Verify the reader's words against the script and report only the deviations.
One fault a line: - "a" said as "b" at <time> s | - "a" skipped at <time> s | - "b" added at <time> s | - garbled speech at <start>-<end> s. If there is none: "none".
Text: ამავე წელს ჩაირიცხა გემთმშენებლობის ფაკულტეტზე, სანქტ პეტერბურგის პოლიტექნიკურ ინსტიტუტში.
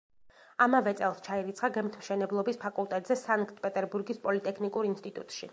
none